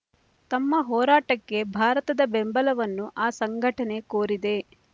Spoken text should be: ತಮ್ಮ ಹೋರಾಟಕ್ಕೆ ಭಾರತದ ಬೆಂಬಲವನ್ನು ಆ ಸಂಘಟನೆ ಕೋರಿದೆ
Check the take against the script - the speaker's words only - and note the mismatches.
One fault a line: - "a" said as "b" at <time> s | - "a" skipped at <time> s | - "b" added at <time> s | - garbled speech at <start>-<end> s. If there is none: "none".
none